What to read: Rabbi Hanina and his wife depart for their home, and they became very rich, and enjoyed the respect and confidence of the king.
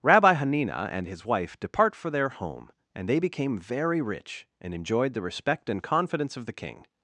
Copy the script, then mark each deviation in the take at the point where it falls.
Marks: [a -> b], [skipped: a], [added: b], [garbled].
Rabbi Hanina and his wife depart for their home, and they became very rich, and enjoyed the respect and confidence of the king.